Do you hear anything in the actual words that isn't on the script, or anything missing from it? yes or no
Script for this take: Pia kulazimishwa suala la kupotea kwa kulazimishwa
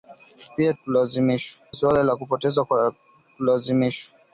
no